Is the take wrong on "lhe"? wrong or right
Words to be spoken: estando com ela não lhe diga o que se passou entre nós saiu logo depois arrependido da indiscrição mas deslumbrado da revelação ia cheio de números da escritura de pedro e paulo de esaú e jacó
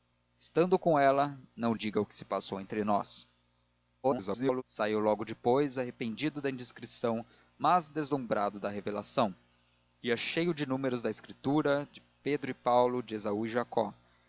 wrong